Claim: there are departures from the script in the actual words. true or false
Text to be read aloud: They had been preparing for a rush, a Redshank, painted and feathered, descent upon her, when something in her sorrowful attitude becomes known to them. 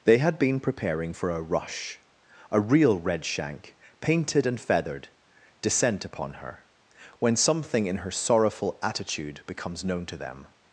true